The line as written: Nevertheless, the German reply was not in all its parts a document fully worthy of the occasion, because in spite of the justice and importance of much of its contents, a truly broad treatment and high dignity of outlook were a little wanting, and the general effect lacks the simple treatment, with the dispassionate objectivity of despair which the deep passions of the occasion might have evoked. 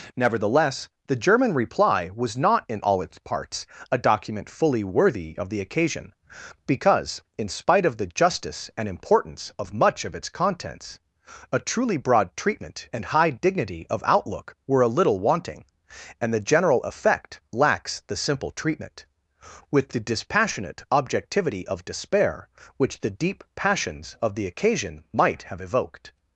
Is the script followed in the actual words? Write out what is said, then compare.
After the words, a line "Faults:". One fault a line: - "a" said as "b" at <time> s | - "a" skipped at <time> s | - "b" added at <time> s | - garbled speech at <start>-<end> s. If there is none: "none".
Nevertheless, the German reply was not in all its parts a document fully worthy of the occasion, because in spite of the justice and importance of much of its contents, a truly broad treatment and high dignity of outlook were a little wanting, and the general effect lacks the simple treatment, with the dispassionate objectivity of despair which the deep passions of the occasion might have evoked.
Faults:
none